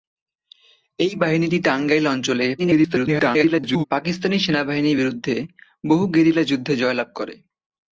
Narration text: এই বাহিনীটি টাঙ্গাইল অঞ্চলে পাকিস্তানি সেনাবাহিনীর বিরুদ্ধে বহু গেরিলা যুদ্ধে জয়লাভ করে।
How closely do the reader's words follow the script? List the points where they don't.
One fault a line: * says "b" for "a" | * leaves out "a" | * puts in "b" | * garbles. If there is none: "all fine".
* garbles